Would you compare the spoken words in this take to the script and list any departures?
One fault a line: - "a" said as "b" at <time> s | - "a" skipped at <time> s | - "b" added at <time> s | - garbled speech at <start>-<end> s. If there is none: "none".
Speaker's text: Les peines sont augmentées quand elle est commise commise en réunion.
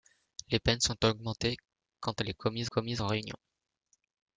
none